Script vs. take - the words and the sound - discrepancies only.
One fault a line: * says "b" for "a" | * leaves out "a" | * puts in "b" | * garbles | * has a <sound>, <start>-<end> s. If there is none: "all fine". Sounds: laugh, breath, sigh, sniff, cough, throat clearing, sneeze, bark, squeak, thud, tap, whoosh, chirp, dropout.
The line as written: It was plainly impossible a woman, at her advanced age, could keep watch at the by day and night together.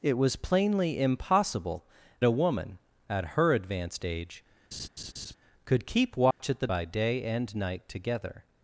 * has a laugh, 4.7-5.3 s
* has a dropout, 6.3-6.4 s